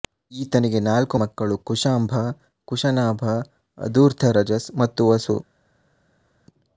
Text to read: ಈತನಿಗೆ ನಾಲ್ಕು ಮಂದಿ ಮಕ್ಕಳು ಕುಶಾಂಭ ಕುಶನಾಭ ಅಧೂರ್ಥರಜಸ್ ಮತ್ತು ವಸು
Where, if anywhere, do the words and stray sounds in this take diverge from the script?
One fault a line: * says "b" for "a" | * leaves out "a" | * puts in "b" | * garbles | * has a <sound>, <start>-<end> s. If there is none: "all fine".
* leaves out "ಮಂದಿ"